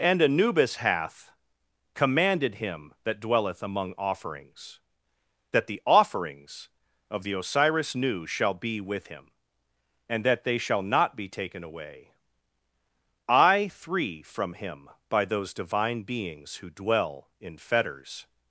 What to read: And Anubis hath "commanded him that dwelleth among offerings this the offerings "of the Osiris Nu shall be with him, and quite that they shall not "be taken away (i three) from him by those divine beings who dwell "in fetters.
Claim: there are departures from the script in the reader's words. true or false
true